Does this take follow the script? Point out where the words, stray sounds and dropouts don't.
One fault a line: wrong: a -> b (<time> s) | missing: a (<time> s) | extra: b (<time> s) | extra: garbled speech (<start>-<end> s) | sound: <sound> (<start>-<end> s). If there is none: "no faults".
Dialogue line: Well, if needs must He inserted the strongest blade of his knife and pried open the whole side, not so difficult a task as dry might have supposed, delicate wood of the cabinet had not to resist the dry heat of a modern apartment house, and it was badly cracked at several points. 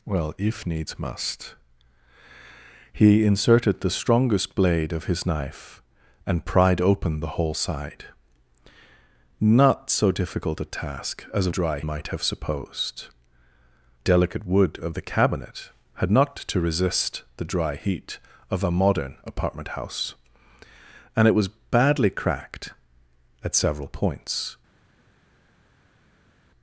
no faults